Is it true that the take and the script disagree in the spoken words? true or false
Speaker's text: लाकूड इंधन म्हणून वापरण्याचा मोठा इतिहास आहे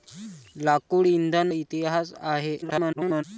true